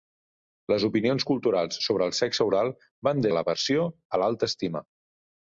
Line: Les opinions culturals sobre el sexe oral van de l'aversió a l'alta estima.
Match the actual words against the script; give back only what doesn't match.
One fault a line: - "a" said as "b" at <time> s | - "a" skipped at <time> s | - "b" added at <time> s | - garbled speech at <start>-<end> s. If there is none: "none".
none